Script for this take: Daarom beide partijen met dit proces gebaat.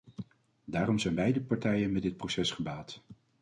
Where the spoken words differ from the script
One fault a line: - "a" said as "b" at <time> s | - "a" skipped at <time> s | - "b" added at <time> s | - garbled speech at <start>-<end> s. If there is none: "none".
- "zijn" added at 1.0 s